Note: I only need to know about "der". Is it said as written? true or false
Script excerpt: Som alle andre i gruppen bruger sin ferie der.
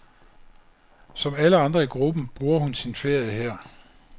false